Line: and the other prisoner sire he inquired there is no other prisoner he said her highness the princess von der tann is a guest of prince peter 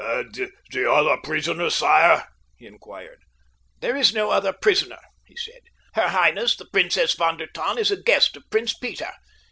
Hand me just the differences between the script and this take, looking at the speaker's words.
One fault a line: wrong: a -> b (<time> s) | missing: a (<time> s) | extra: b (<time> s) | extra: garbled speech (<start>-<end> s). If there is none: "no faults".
no faults